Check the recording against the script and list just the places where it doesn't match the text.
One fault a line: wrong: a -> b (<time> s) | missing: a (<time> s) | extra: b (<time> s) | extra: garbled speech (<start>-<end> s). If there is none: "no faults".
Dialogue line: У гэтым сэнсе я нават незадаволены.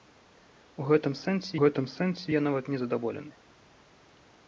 extra: гэтым сэнсе (1.6 s)